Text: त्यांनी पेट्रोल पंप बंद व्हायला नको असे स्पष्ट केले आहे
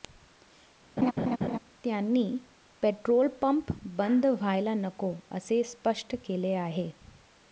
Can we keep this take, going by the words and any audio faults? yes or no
no